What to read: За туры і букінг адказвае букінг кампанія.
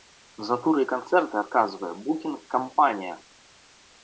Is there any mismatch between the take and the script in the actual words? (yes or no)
yes